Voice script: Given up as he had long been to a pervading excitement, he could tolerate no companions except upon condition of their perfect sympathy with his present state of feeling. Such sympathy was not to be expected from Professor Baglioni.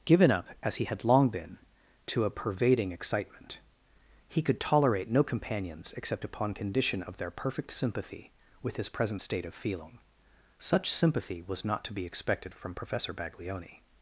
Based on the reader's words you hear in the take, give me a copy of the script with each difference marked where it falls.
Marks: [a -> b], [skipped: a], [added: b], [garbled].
Given up as he had long been to a pervading excitement, he could tolerate no companions except upon condition of their perfect sympathy with his present state of feeling. Such sympathy was not to be expected from Professor Baglioni.